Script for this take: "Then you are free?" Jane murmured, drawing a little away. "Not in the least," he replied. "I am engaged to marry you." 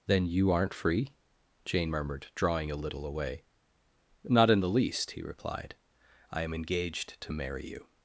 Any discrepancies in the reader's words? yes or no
yes